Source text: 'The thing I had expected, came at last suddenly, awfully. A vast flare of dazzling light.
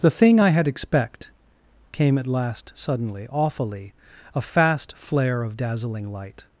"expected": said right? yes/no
no